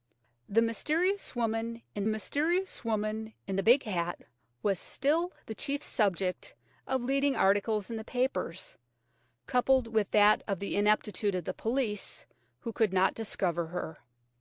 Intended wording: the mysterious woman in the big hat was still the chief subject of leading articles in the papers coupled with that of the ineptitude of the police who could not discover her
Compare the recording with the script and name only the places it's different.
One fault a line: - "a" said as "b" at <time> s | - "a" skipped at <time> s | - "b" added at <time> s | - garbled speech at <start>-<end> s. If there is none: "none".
- "mysterious woman in" added at 2.1 s